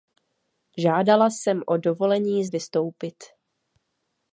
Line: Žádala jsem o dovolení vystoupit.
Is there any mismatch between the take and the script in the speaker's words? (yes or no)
no